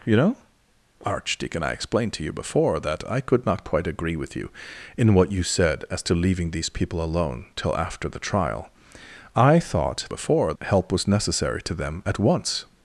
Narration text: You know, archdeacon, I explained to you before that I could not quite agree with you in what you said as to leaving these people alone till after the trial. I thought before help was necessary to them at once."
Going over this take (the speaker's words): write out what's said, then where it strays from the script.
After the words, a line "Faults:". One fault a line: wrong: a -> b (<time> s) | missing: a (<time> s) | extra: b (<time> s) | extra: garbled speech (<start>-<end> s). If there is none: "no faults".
You know, archdeacon, I explained to you before that I could not quite agree with you in what you said as to leaving these people alone till after the trial. I thought before help was necessary to them at once."
Faults:
no faults